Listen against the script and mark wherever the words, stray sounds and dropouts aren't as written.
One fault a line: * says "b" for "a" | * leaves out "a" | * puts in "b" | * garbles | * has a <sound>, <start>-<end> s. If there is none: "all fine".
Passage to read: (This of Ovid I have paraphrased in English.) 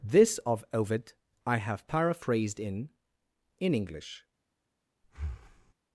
* puts in "in"
* has a breath, 5.0-5.7 s